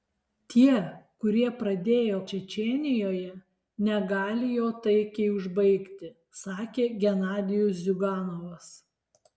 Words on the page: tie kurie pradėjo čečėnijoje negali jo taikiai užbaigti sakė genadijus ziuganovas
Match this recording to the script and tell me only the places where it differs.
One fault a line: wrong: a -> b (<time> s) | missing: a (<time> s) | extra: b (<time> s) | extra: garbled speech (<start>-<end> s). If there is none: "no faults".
no faults